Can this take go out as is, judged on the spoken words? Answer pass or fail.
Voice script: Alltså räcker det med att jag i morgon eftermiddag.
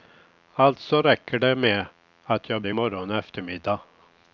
pass